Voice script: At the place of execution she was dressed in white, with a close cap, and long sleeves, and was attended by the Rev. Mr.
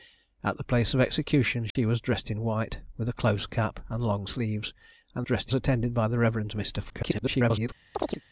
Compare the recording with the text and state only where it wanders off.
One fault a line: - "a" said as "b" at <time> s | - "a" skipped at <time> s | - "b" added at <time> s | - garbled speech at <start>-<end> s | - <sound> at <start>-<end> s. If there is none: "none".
- dropout at 1.7-1.8 s
- "was" said as "dressed" at 5.2 s
- garbled speech at 6.9-7.7 s
- chirp at 7.9-8.2 s